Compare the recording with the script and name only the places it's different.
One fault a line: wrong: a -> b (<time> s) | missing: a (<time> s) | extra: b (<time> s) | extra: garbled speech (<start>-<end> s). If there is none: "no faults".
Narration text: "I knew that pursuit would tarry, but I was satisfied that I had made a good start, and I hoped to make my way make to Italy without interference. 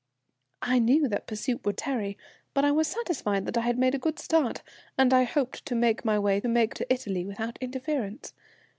no faults